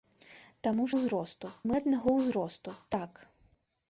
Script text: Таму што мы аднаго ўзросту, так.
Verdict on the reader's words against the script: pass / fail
fail